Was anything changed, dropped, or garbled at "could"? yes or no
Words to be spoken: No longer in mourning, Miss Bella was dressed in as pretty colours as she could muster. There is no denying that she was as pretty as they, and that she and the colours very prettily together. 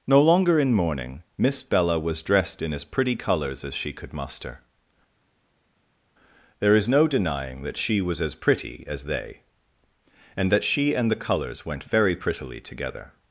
no